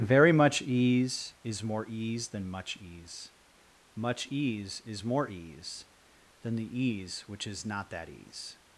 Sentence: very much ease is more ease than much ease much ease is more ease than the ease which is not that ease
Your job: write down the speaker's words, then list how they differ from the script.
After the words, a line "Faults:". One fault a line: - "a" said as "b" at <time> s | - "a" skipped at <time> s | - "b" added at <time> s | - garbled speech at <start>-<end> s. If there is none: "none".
very much ease is more ease than much ease much ease is more ease than the ease which is not that ease
Faults:
none